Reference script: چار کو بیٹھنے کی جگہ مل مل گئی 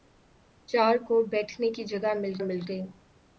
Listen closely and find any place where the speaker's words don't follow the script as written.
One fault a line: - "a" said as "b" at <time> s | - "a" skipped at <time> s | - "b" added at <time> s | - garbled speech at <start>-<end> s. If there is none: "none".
none